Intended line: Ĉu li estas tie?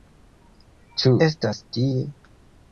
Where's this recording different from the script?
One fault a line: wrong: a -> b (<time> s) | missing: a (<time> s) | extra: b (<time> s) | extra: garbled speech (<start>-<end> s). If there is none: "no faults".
missing: li (1.1 s)